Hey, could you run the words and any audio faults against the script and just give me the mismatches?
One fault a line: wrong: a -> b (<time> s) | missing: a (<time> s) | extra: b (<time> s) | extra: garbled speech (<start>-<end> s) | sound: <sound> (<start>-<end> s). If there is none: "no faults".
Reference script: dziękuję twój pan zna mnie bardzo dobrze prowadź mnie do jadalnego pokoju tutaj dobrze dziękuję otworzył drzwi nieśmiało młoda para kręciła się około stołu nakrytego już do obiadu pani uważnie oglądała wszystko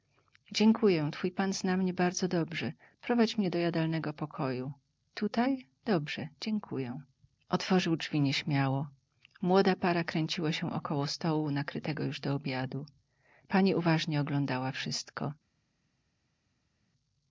no faults